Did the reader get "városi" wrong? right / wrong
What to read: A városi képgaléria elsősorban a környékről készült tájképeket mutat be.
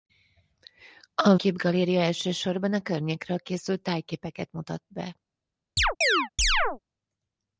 wrong